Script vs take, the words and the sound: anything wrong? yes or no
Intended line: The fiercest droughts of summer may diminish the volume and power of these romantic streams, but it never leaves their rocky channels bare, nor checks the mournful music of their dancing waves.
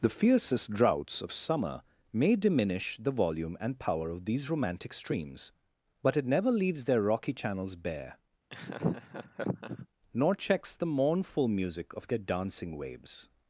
yes